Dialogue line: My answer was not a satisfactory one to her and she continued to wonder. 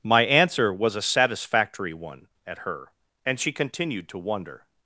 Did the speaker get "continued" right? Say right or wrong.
right